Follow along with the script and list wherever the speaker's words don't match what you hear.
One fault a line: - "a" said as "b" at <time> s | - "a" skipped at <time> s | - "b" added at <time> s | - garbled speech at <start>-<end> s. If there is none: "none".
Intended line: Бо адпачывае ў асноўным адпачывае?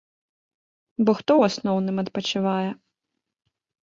- "адпачывае" said as "хто" at 1.2 s